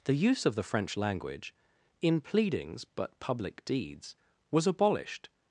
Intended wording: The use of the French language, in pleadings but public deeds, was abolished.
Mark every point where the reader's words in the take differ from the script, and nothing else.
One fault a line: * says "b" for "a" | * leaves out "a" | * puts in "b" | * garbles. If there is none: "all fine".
all fine